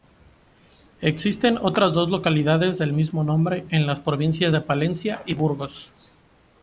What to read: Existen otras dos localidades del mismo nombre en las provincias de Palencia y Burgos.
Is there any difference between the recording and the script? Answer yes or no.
no